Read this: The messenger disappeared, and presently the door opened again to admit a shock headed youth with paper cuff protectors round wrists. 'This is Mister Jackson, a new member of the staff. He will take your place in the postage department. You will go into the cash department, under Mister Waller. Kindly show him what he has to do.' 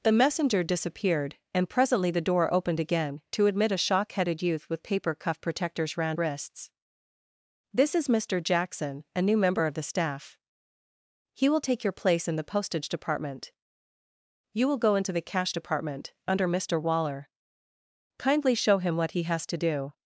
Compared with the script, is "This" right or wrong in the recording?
right